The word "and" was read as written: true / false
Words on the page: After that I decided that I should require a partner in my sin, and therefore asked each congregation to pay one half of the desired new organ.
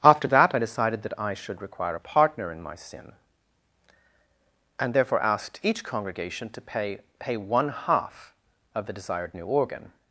true